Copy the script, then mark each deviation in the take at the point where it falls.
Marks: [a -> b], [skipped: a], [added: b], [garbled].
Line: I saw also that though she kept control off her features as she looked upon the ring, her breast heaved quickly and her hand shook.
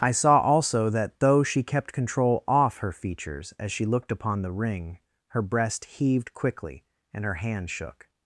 I saw also that though she kept control off her features as she looked upon the ring, her breast heaved quickly and her hand shook.